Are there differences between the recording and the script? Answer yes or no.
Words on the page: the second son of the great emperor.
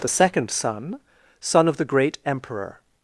yes